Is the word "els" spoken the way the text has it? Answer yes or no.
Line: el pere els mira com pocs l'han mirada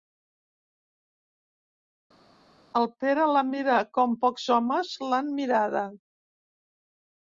no